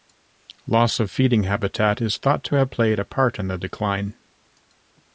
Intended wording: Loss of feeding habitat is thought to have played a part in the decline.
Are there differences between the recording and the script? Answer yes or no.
no